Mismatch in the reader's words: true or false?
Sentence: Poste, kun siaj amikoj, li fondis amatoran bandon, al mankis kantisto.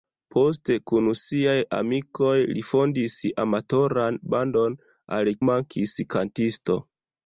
false